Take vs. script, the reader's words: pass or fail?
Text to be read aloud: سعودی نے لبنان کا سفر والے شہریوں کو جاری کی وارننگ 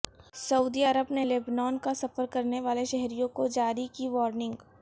fail